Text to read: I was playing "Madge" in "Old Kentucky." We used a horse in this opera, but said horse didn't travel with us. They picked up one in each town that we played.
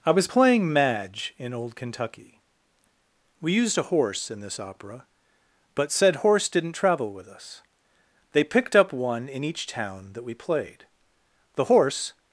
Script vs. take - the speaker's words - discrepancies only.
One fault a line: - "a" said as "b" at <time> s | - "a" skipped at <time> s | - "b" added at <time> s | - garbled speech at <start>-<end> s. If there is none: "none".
- "The horse" added at 11.5 s